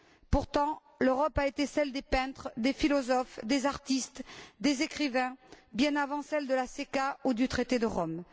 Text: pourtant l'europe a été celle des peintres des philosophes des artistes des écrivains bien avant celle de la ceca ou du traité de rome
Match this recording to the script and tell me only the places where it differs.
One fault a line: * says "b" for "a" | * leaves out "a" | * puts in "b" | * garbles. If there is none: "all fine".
all fine